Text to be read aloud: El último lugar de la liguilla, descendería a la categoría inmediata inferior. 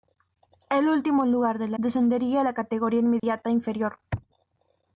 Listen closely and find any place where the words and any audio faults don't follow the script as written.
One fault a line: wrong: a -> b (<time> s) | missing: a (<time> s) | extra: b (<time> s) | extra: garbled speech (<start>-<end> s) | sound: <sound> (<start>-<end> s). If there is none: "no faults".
missing: liguilla (1.8 s)
sound: dropout (3.2-3.2 s)